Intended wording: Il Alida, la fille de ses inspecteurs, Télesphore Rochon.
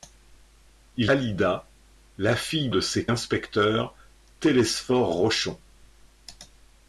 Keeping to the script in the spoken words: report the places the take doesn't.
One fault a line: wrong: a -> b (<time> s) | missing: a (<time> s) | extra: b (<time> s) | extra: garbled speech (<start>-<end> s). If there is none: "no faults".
no faults